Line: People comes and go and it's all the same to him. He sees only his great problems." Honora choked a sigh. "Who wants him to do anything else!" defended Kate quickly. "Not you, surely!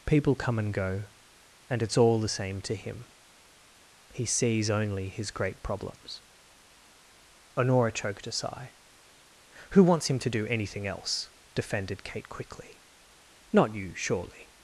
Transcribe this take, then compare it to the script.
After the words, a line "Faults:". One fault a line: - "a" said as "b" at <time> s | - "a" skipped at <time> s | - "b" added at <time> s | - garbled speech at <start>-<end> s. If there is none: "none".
People come and go and it's all the same to him. He sees only his great problems." Honora choked a sigh. "Who wants him to do anything else!" defended Kate quickly. "Not you, surely!
Faults:
- "comes" said as "come" at 0.3 s